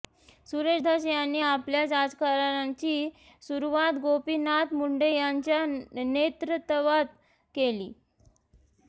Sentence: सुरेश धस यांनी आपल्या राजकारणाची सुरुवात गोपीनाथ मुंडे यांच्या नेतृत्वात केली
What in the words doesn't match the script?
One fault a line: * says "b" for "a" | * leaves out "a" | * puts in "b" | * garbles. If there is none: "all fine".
all fine